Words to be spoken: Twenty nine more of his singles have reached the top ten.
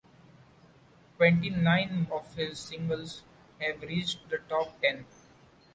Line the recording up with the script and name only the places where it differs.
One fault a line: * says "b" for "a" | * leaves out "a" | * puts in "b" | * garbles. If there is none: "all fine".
* leaves out "more"